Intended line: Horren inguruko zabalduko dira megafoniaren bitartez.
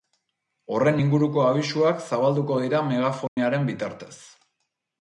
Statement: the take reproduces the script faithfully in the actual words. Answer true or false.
false